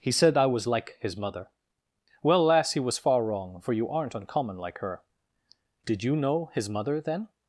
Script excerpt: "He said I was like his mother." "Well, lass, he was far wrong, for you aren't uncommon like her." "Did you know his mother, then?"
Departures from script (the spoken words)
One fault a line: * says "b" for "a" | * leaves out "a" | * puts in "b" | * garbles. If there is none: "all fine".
all fine